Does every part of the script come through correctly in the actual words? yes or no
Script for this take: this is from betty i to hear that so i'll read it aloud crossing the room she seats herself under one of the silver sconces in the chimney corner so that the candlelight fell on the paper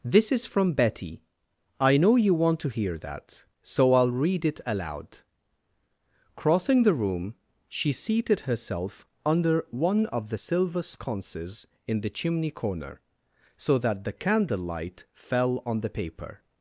no